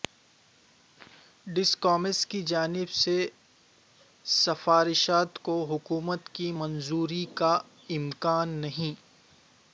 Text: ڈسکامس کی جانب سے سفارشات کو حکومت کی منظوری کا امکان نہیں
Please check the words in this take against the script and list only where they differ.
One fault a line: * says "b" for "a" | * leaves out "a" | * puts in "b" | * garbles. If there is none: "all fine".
all fine